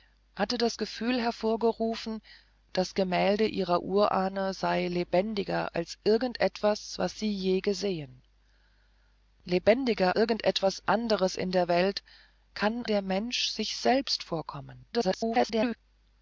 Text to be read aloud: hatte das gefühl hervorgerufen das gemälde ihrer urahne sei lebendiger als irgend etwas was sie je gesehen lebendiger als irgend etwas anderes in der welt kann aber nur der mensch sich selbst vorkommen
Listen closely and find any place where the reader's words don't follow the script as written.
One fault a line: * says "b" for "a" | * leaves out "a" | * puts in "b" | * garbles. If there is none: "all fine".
* leaves out "als"
* leaves out "aber nur"
* garbles